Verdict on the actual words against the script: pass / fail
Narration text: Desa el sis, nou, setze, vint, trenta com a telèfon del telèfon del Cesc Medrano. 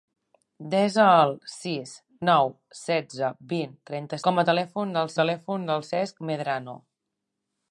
pass